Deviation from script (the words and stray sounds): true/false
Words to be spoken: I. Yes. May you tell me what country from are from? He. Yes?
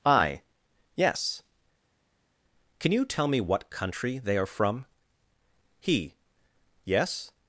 true